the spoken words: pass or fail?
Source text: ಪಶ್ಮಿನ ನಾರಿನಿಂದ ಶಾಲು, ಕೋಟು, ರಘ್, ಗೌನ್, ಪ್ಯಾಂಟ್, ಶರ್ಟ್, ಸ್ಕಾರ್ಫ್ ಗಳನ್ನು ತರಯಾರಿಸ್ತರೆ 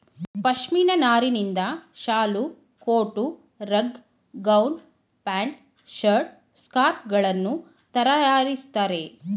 pass